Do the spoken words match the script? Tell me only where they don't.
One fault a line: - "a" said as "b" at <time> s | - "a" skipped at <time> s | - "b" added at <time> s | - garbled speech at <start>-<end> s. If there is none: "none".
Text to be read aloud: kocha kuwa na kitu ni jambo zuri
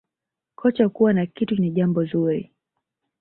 none